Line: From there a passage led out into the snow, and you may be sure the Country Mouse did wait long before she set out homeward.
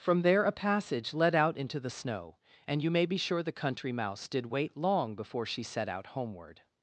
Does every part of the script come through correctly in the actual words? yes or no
yes